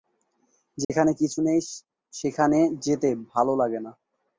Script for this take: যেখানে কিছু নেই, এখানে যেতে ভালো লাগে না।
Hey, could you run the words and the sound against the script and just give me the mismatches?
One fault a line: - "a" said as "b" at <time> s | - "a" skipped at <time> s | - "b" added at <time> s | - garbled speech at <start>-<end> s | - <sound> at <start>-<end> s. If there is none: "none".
- dropout at 0.8-0.9 s
- "এখানে" said as "সেখানে" at 2.1 s